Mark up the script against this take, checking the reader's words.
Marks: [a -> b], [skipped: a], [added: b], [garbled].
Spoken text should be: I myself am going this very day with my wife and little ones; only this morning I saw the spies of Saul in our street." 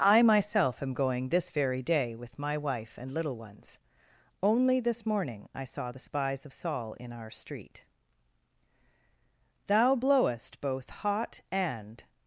I myself am going this very day with my wife and little ones; only this morning I saw the spies of Saul in our street." [added: Thou blowest both hot and]